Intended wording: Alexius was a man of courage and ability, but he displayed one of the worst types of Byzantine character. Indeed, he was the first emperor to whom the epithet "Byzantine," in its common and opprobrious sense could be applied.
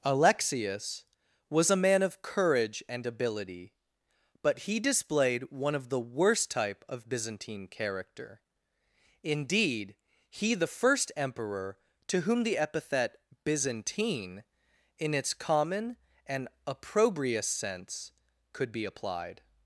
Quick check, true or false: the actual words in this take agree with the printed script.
false